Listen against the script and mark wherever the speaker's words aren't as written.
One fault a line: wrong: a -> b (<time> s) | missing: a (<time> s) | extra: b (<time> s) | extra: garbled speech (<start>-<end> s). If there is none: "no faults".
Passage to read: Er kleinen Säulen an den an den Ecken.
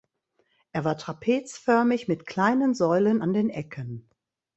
extra: war trapezförmig mit (0.8 s)
missing: an den (3.5 s)